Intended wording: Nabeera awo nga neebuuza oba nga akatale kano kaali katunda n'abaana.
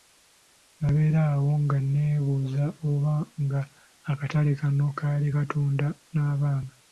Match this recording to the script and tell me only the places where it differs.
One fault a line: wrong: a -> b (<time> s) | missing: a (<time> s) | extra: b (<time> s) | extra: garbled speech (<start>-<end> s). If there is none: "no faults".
no faults